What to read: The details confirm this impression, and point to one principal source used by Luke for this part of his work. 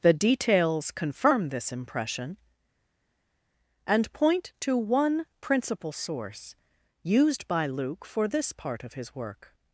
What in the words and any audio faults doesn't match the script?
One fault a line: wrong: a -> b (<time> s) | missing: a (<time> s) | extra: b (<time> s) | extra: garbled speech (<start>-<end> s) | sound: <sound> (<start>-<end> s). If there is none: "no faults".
no faults